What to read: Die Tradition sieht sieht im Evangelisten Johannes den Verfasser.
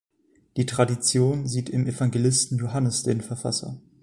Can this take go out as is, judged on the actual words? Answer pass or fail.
fail